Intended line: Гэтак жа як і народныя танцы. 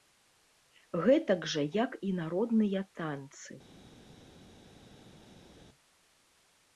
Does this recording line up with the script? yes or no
yes